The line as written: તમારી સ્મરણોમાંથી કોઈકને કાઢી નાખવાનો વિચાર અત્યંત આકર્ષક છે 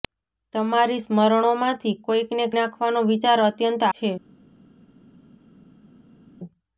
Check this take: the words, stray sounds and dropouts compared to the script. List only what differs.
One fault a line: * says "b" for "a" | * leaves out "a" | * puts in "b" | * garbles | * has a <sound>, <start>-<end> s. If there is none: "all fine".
* leaves out "કાઢી"
* leaves out "આકર્ષક"